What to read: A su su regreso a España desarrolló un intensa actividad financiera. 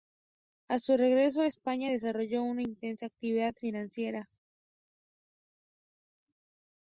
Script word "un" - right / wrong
wrong